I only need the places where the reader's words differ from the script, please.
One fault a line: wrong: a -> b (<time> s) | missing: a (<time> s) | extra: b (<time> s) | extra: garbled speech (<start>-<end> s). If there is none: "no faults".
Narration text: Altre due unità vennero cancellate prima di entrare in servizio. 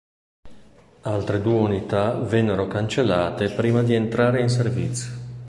no faults